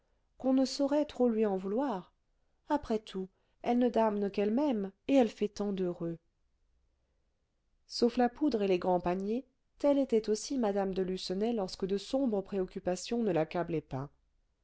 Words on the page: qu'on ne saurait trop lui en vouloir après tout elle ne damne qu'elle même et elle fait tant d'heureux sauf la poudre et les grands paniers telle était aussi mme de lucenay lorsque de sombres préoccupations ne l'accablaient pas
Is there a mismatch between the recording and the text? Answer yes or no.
no